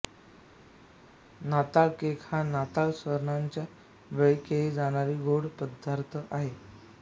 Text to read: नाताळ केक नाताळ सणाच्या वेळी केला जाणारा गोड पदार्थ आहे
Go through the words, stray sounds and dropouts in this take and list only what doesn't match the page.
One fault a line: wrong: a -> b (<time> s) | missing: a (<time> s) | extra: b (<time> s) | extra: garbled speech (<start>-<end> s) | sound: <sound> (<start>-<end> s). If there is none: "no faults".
extra: हा (2.2 s)